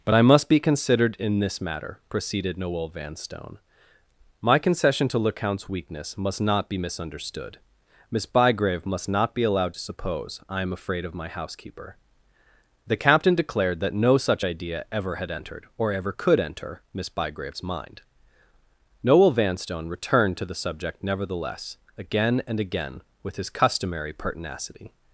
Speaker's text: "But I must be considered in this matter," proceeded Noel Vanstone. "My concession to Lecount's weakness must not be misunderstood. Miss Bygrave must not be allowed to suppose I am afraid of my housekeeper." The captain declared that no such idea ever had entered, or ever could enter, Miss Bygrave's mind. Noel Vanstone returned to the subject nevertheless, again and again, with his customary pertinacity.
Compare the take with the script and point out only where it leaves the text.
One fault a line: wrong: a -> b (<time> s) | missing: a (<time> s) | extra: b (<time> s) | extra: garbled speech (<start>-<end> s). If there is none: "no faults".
no faults